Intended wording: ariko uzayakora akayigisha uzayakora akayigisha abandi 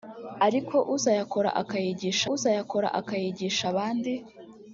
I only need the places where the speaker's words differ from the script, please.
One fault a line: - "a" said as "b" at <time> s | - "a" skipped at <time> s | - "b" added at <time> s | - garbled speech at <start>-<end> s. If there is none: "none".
none